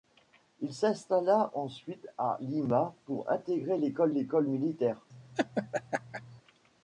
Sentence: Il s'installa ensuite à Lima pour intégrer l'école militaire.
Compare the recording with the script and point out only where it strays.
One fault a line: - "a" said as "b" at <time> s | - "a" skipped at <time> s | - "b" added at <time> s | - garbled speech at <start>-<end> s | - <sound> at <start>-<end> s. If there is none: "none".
- "l'école" added at 4.1 s
- laugh at 5.1-6.4 s